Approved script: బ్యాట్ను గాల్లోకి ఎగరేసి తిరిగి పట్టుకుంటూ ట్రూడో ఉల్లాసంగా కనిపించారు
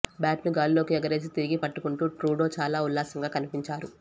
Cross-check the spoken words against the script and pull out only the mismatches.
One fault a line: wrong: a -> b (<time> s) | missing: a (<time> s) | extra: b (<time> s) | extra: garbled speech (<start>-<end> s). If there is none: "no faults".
extra: చాలా (2.6 s)